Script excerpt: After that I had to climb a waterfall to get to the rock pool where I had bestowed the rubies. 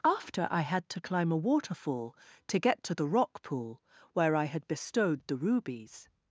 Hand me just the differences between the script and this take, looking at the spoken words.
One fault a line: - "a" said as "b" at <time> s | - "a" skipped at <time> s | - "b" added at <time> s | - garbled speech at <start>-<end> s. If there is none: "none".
- "that" skipped at 0.5 s